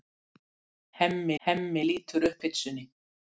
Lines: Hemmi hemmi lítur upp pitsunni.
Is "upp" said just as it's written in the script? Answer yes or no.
yes